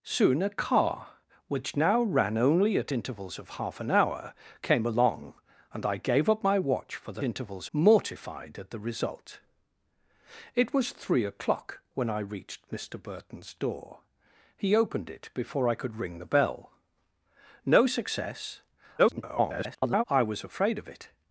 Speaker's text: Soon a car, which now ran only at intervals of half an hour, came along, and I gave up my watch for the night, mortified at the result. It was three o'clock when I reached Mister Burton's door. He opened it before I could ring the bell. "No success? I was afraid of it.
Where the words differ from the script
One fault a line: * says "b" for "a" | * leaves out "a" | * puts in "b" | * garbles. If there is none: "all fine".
* says "intervals" for "night"
* garbles